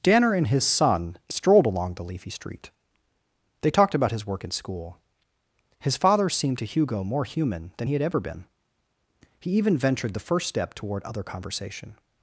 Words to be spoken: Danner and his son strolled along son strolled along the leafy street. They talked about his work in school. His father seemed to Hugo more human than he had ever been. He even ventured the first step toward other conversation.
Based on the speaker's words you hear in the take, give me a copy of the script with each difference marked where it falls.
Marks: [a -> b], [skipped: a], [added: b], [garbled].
Danner and his son strolled along [skipped: son strolled along] the leafy street. They talked about his work in school. His father seemed to Hugo more human than he had ever been. He even ventured the first step toward other conversation.